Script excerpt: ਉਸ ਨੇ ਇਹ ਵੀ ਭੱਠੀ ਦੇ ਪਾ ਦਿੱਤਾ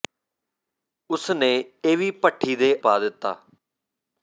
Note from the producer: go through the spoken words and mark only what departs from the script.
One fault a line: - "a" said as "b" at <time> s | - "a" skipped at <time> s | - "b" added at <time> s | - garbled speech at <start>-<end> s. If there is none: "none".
none